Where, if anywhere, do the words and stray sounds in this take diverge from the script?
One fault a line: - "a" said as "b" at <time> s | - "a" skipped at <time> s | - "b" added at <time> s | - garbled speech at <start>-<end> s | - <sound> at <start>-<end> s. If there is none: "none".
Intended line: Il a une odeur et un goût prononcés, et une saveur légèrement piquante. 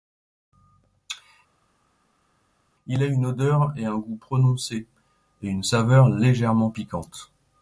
none